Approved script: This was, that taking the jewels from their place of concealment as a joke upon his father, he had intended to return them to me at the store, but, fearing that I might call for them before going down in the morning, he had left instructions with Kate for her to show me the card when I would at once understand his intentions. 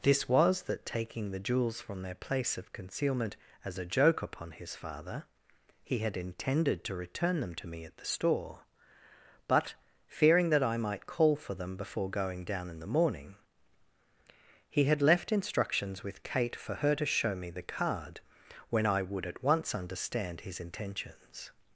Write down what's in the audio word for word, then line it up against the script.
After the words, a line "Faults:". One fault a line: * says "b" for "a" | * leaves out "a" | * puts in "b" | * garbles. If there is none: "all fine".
This was, that taking the jewels from their place of concealment as a joke upon his father, he had intended to return them to me at the store, but, fearing that I might call for them before going down in the morning, he had left instructions with Kate for her to show me the card when I would at once understand his intentions.
Faults:
all fine